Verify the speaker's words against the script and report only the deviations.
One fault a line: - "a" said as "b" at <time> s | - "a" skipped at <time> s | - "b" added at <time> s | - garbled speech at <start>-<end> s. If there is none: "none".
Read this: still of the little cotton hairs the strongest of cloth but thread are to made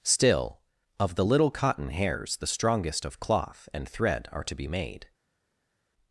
- "but" said as "and" at 3.7 s
- "be" added at 4.5 s